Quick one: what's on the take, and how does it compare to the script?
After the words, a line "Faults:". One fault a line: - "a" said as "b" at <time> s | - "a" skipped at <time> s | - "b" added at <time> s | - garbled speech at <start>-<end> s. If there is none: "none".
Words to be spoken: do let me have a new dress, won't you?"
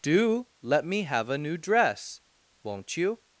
do let me have a new dress, won't you?"
Faults:
none